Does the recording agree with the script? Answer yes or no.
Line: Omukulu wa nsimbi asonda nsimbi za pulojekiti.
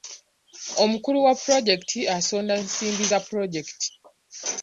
no